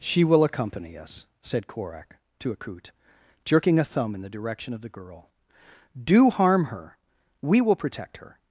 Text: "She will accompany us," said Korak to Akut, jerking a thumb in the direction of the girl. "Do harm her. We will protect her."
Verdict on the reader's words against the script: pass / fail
pass